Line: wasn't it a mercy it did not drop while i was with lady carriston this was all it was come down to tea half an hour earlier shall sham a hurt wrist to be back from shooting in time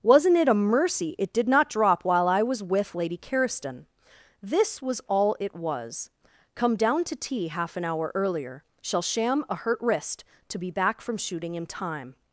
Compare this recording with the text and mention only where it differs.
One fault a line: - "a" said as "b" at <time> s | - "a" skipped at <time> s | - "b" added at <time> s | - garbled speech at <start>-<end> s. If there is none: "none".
none